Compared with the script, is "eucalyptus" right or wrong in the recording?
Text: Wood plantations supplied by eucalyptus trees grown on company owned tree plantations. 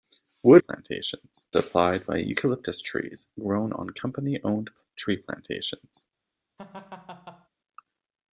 right